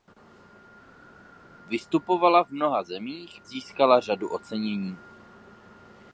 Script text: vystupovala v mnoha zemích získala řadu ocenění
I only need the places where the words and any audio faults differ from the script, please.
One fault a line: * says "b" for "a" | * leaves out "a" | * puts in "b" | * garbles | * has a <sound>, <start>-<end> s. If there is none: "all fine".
all fine